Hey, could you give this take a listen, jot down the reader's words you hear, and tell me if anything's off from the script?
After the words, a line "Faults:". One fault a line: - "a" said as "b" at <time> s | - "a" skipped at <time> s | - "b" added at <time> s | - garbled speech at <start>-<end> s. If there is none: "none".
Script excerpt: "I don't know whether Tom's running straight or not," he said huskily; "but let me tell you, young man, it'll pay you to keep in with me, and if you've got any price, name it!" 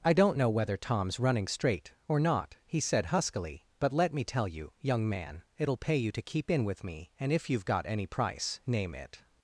"I don't know whether Tom's running straight or not," he said huskily; "but let me tell you, young man, it'll pay you to keep in with me, and if you've got any price, name it!"
Faults:
none